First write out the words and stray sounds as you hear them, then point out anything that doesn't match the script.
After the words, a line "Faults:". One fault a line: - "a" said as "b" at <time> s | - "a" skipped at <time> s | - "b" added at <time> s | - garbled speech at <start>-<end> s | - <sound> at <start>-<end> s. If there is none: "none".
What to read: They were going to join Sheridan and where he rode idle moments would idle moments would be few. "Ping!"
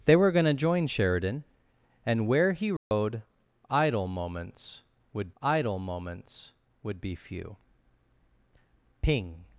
They were going to join Sheridan and where he rode idle moments would idle moments would be few. "Ping!"
Faults:
- dropout at 2.8-2.9 s